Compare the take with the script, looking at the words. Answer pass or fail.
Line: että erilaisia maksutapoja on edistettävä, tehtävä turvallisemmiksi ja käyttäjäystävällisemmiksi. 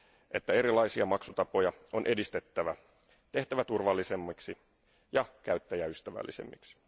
pass